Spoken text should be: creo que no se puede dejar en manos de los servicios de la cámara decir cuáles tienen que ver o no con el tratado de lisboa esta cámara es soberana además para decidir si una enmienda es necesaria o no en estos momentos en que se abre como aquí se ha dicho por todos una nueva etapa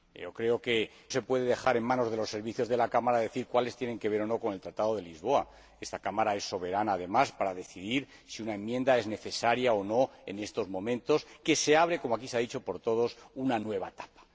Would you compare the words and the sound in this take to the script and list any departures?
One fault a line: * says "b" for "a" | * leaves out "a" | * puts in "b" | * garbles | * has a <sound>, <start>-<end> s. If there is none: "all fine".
* leaves out "no"